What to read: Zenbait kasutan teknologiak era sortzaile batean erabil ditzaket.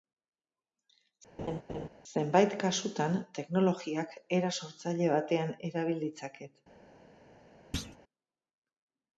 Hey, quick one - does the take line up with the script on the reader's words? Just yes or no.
yes